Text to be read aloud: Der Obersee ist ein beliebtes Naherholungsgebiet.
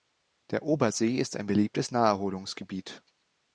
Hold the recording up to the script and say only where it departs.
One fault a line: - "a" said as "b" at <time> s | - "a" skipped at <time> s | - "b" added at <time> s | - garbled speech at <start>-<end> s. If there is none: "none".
none